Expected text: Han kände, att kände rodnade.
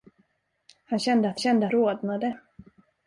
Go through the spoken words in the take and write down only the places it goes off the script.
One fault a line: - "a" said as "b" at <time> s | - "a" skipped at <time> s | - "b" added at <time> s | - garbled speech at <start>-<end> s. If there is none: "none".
none